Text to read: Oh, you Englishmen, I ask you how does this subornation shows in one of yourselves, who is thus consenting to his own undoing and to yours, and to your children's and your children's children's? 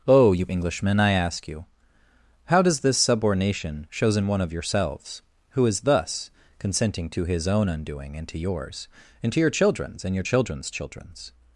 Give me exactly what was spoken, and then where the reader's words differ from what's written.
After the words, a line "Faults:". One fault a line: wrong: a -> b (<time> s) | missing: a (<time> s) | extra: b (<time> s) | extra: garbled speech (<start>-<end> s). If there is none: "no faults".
Oh, you Englishmen, I ask you how does this subornation shows in one of yourselves, who is thus consenting to his own undoing and to yours, and to your children's and your children's children's?
Faults:
no faults